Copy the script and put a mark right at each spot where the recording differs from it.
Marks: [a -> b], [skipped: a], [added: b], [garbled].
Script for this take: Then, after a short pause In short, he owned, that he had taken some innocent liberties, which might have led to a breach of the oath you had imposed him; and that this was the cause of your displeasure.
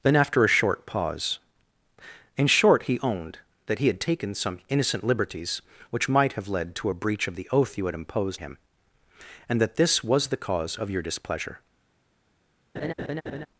Then, after a short pause In short, he owned, that he had taken some innocent liberties, which might have led to a breach of the oath you had imposed him; and that this was the cause of your displeasure.